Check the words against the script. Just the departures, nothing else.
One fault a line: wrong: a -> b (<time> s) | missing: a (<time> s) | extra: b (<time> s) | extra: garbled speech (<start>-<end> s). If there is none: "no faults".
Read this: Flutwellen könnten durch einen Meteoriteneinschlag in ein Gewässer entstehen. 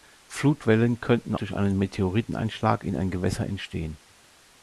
no faults